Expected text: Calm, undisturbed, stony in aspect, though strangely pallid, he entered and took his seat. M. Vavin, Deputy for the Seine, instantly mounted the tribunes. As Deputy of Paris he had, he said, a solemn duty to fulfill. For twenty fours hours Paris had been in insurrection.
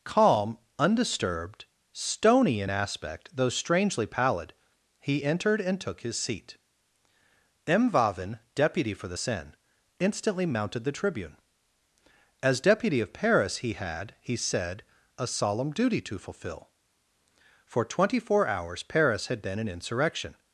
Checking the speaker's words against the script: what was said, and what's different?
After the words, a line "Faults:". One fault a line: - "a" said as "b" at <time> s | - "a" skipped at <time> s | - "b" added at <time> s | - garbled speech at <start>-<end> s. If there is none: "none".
Calm, undisturbed, stony in aspect, though strangely pallid, he entered and took his seat. M. Vavin, Deputy for the Seine, instantly mounted the tribune. As Deputy of Paris he had, he said, a solemn duty to fulfill. For twenty four hours Paris had been in insurrection.
Faults:
- "tribunes" said as "tribune" at 10.9 s
- "fours" said as "four" at 18.2 s